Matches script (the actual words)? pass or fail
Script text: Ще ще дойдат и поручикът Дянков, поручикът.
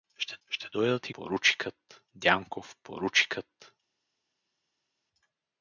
pass